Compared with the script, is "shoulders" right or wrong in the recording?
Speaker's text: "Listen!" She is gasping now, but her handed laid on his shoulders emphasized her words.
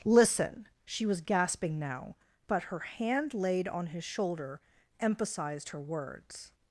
wrong